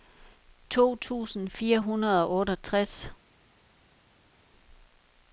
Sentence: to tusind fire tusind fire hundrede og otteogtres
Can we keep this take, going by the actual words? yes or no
no